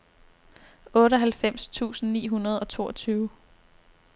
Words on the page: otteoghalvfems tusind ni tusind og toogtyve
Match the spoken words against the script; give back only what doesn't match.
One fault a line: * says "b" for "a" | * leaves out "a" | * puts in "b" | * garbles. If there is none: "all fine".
* says "hundrede" for "tusind"